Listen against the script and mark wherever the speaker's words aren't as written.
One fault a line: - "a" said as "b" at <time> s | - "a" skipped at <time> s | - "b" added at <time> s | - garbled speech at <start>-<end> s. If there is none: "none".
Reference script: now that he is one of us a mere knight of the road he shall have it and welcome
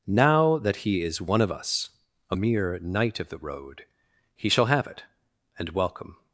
none